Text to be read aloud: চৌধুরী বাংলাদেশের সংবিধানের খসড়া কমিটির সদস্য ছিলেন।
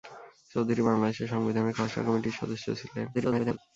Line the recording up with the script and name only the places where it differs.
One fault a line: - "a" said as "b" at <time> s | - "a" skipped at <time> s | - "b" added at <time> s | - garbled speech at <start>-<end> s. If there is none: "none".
- garbled speech at 3.1-3.6 s